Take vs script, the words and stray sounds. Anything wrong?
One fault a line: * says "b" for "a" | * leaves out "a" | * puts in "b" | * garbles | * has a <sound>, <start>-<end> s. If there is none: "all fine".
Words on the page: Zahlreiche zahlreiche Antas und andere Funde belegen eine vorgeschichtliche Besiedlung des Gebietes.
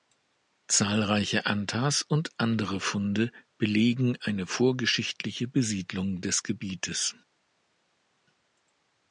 * leaves out "zahlreiche"